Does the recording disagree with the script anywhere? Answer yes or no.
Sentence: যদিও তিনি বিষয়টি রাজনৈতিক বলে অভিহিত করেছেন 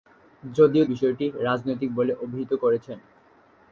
yes